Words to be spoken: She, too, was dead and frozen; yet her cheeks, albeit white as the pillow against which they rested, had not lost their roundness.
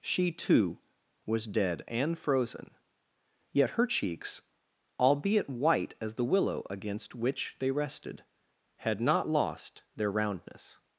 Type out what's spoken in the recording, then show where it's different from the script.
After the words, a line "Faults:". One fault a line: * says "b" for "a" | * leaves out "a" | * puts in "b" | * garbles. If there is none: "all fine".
She, too, was dead and frozen; yet her cheeks, albeit white as the willow against which they rested, had not lost their roundness.
Faults:
* says "willow" for "pillow"